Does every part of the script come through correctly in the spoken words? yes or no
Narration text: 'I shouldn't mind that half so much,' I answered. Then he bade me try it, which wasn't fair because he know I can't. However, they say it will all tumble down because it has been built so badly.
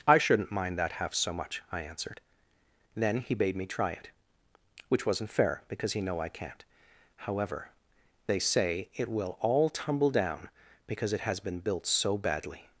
yes